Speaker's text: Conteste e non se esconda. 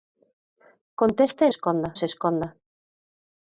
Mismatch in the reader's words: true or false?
true